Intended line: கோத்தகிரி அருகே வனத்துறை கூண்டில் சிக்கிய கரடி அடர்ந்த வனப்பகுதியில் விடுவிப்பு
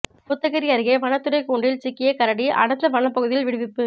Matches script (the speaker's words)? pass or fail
pass